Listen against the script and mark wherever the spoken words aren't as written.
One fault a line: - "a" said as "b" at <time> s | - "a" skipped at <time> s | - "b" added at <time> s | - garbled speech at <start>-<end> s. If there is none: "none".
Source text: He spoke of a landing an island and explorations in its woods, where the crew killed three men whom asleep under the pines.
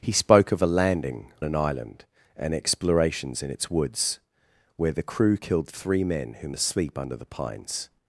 none